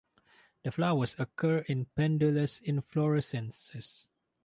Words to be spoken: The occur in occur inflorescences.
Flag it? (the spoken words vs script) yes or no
yes